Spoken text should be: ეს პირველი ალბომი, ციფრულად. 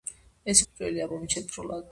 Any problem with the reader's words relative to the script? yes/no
no